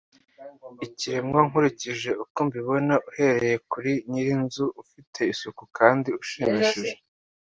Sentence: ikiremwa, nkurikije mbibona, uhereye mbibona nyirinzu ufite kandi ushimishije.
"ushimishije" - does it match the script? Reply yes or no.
yes